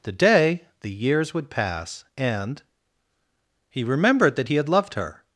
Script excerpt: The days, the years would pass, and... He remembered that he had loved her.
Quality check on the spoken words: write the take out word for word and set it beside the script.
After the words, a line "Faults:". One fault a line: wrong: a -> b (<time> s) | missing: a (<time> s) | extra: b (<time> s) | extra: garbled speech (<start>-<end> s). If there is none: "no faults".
The day, the years would pass, and... He remembered that he had loved her.
Faults:
wrong: days -> day (0.1 s)